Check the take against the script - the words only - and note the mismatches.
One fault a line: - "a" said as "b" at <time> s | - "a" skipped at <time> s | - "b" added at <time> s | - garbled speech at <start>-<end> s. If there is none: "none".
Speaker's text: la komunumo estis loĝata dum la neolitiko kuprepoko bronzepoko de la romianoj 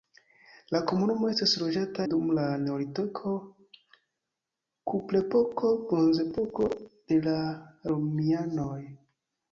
none